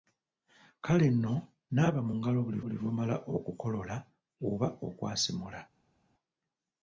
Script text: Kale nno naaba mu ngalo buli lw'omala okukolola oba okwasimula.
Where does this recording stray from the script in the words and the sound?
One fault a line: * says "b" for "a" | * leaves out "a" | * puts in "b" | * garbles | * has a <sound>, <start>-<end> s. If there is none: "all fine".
* puts in "buli"